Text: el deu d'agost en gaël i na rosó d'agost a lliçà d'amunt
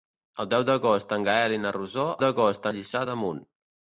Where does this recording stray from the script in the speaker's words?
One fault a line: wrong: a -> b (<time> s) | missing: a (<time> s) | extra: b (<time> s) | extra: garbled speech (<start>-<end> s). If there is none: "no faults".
no faults